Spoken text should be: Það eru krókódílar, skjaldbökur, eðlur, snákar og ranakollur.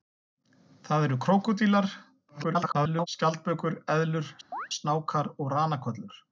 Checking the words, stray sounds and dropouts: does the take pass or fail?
fail